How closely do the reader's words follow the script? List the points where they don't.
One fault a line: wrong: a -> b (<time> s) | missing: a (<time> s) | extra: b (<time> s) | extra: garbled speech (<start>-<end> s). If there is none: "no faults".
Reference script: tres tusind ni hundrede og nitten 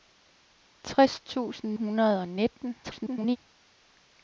missing: ni (1.8 s)
extra: garbled speech (2.8-3.4 s)